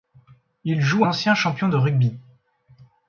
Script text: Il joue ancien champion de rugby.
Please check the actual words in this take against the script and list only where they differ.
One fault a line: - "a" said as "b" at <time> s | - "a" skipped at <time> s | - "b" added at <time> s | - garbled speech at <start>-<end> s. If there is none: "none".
none